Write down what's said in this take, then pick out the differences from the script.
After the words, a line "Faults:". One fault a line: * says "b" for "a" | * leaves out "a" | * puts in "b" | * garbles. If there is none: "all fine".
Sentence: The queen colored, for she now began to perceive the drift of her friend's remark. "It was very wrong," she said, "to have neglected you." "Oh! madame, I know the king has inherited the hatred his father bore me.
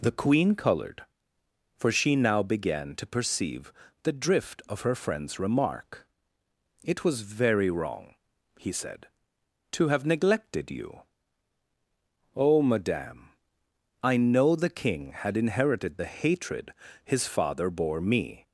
The queen colored, for she now began to perceive the drift of her friend's remark. "It was very wrong," he said, "to have neglected you." "Oh! madame, I know the king had inherited the hatred his father bore me.
Faults:
* says "he" for "she"
* says "had" for "has"